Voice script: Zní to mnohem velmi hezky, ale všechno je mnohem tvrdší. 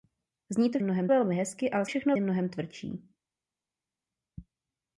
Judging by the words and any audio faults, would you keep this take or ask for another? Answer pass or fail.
pass